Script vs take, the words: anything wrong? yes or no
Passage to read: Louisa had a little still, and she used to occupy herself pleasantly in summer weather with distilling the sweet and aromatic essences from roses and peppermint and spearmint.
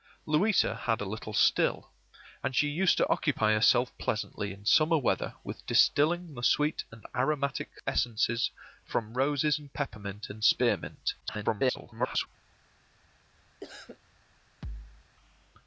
yes